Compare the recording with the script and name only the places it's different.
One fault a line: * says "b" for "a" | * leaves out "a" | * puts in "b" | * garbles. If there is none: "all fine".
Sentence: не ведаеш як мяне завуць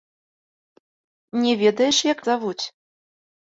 * leaves out "мяне"